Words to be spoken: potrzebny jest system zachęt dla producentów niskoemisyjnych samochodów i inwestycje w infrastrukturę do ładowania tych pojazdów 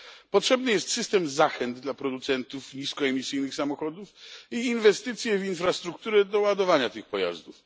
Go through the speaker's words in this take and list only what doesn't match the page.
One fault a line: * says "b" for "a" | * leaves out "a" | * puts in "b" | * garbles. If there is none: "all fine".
all fine